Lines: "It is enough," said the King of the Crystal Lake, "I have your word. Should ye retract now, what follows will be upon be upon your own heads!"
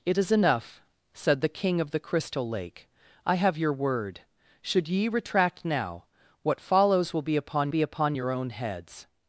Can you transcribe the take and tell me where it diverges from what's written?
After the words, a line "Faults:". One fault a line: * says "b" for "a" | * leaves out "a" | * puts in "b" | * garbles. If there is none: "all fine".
"It is enough," said the King of the Crystal Lake, "I have your word. Should ye retract now, what follows will be upon be upon your own heads!"
Faults:
all fine